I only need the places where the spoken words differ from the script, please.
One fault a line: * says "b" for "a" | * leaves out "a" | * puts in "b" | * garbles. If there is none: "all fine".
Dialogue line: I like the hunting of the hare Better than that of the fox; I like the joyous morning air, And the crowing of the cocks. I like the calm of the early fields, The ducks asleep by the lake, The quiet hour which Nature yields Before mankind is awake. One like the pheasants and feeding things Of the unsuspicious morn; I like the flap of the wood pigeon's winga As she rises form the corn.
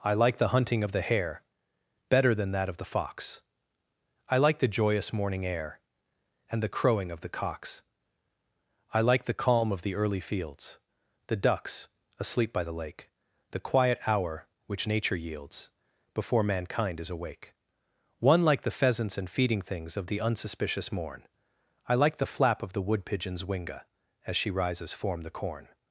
all fine